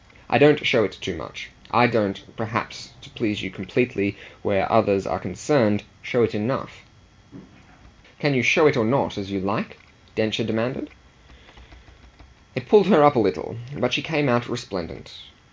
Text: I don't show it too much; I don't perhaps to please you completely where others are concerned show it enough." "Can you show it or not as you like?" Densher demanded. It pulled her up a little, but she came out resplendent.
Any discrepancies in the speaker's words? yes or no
no